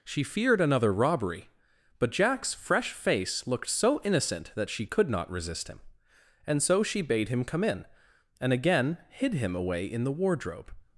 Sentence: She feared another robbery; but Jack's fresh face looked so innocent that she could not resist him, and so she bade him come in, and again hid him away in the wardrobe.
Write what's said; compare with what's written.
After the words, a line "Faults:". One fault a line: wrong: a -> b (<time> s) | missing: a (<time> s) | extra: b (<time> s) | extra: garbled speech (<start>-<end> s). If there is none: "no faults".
She feared another robbery; but Jack's fresh face looked so innocent that she could not resist him, and so she bade him come in, and again hid him away in the wardrobe.
Faults:
no faults